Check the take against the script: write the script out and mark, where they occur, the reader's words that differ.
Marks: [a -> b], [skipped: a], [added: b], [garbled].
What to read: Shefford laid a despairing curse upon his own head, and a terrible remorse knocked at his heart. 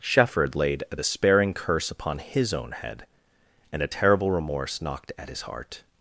Shefford laid a despairing curse upon his own head, and a terrible remorse knocked at his heart.